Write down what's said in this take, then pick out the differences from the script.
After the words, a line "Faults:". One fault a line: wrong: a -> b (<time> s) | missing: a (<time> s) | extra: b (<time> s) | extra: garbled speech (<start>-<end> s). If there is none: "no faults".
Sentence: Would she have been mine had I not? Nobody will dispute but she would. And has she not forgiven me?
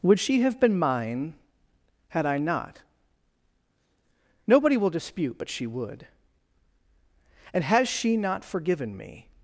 Would she have been mine had I not? Nobody will dispute but she would. And has she not forgiven me?
Faults:
no faults